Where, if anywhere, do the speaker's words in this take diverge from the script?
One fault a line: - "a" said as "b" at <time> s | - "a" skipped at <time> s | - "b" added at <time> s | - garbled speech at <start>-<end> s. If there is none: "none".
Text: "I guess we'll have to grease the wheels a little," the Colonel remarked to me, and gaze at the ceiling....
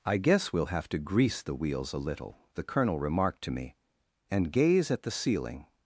none